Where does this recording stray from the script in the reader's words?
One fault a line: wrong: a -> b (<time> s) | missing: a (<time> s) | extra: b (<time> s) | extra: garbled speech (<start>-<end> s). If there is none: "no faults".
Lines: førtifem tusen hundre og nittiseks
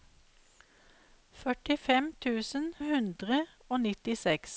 no faults